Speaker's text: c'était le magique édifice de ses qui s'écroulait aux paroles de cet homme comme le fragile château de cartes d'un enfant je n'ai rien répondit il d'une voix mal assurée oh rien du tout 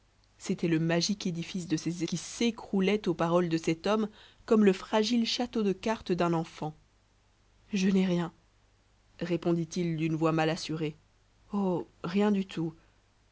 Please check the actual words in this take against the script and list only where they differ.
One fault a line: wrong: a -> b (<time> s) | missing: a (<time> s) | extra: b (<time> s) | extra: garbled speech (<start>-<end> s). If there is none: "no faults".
no faults